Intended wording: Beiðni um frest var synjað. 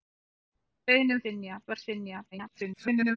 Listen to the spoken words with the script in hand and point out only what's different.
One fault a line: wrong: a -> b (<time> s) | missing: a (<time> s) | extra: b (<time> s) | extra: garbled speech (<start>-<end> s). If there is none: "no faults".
wrong: frest -> synjað (1.2 s)
extra: garbled speech (2.3-3.2 s)